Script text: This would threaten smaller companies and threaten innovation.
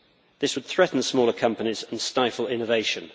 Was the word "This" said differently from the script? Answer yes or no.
no